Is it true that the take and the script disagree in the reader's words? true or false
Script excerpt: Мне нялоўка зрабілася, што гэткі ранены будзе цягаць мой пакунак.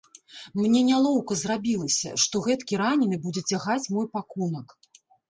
false